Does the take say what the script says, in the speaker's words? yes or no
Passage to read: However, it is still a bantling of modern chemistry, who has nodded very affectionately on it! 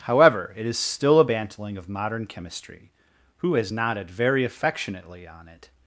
yes